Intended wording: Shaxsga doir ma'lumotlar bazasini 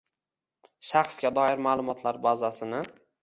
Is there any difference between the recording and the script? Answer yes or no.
no